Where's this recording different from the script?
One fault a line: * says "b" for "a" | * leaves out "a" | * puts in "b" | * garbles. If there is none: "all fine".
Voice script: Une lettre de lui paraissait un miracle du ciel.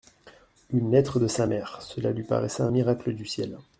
* puts in "sa mère Cela"